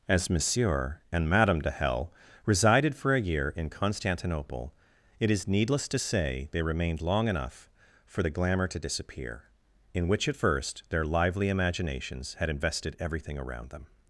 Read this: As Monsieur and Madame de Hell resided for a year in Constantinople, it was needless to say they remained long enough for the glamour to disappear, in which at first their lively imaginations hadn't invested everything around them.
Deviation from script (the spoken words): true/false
true